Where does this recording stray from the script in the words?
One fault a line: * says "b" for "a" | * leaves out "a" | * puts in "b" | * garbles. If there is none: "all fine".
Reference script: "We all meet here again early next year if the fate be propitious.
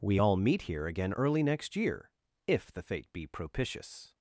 all fine